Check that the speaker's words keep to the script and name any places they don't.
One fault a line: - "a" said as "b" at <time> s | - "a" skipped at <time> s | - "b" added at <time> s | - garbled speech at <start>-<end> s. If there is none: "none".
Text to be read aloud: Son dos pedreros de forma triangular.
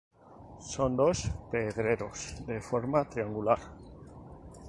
none